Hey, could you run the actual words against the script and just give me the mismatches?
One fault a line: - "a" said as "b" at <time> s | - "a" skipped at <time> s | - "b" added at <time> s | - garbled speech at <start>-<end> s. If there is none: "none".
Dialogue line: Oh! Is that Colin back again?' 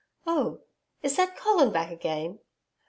none